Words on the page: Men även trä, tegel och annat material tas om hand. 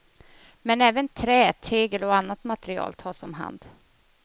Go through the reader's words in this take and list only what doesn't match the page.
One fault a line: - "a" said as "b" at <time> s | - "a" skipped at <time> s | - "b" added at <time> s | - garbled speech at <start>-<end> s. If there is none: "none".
none